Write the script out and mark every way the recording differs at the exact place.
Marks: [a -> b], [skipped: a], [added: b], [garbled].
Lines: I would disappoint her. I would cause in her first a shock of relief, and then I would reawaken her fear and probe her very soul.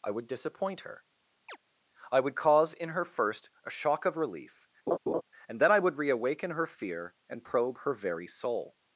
I would disappoint her. I would cause in her first a shock of relief, and then I would reawaken her fear and probe her very soul.